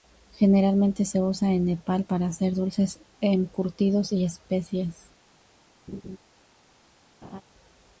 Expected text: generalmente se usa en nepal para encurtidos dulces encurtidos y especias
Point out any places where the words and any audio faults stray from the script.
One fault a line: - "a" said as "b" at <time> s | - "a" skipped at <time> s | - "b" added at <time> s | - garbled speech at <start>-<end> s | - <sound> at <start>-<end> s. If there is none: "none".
- "encurtidos" said as "hacer" at 2.3 s
- laugh at 5.9-6.2 s
- laugh at 7.2-7.4 s